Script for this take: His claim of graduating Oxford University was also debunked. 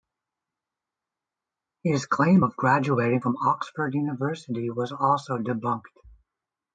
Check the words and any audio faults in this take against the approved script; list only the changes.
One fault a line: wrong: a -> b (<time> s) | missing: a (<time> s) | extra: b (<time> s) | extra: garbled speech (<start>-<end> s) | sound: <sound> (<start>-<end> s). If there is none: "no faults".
extra: from (3.2 s)